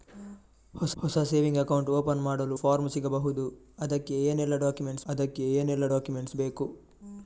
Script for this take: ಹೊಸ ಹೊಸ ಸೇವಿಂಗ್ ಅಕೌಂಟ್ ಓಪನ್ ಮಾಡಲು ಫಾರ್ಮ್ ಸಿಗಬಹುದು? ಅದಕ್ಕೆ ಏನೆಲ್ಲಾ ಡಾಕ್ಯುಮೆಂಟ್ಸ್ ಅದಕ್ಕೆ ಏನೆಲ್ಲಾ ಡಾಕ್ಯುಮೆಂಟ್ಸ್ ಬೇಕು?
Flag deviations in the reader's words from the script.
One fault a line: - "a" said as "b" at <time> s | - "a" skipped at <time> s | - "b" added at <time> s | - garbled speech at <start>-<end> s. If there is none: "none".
none